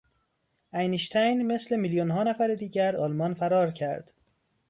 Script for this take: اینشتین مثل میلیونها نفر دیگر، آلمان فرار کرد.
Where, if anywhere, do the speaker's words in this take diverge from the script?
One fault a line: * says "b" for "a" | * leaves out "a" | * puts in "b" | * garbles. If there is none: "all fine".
all fine